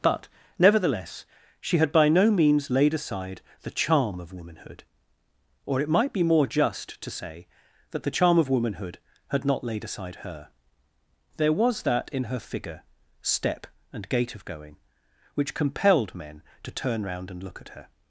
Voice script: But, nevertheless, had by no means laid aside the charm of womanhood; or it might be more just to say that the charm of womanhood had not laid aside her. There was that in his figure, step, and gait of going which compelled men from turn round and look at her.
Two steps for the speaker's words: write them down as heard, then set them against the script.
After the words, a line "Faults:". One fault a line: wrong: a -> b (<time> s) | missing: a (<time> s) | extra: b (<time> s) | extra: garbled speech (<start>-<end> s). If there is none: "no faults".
But, nevertheless, she had by no means laid aside the charm of womanhood; or it might be more just to say that the charm of womanhood had not laid aside her. There was that in her figure, step, and gait of going which compelled men to turn round and look at her.
Faults:
extra: she (1.6 s)
wrong: his -> her (12.2 s)
wrong: from -> to (16.6 s)